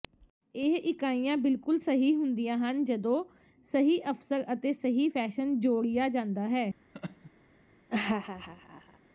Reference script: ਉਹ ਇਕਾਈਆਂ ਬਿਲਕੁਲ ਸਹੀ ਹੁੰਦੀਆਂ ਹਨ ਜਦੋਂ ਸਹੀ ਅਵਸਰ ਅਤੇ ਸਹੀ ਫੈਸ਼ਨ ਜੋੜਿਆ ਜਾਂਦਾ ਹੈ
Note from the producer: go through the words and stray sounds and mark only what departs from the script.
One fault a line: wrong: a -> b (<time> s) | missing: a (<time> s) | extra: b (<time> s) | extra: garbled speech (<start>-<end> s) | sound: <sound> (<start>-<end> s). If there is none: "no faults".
wrong: ਉਹ -> ਇਹ (0.6 s)
sound: laugh (6.9-7.3 s)
sound: laugh (7.9-9.0 s)